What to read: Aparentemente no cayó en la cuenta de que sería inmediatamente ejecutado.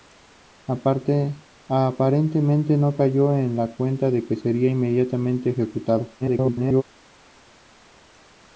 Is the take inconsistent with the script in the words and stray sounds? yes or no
yes